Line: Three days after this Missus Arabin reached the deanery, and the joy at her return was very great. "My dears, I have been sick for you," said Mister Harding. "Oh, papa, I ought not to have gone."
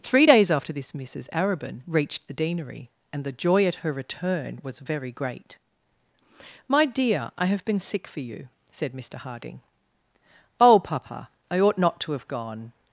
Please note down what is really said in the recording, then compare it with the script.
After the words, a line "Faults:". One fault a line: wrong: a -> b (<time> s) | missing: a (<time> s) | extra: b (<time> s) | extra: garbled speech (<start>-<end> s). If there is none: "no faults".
Three days after this Missus Arabin reached the deanery, and the joy at her return was very great. "My dear, I have been sick for you," said Mister Harding. "Oh, papa, I ought not to have gone."
Faults:
wrong: dears -> dear (6.8 s)